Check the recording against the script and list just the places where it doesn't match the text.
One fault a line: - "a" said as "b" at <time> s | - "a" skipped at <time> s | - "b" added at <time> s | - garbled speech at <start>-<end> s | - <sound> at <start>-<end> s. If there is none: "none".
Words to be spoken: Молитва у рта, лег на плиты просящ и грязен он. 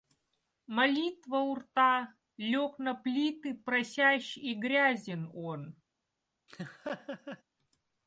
- laugh at 6.5-7.4 s